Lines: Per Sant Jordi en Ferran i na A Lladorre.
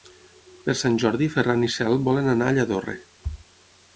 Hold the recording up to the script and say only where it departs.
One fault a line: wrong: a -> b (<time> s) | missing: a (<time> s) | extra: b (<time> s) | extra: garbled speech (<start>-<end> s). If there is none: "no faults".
extra: Cel volen anar (1.8 s)